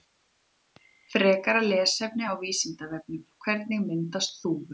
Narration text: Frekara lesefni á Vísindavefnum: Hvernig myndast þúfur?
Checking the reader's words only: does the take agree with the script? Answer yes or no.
yes